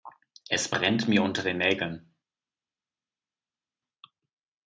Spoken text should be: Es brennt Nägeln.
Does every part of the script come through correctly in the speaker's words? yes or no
no